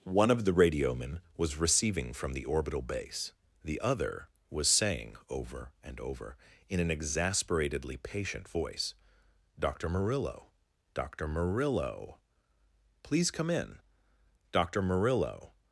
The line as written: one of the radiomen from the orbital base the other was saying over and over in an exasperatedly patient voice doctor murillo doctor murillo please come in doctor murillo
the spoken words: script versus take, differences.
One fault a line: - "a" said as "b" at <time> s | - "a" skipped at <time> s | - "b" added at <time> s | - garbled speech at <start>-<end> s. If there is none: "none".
- "was receiving" added at 1.4 s